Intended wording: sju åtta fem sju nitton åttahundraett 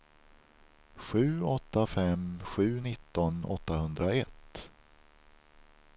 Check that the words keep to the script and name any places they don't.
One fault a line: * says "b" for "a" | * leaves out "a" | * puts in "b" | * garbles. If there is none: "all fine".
all fine